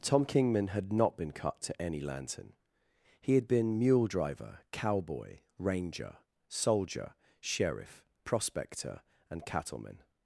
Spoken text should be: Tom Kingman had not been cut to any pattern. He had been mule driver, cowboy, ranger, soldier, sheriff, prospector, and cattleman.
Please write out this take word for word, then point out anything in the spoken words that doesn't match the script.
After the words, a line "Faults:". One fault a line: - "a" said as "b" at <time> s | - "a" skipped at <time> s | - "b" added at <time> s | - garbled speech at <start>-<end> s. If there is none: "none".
Tom Kingman had not been cut to any lantern. He had been mule driver, cowboy, ranger, soldier, sheriff, prospector, and cattleman.
Faults:
- "pattern" said as "lantern" at 2.0 s